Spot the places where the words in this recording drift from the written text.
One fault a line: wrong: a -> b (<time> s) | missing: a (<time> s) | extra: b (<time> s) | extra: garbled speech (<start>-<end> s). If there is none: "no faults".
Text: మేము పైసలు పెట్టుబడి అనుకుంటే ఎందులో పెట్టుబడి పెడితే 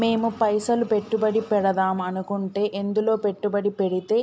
extra: పెడదాం (1.5 s)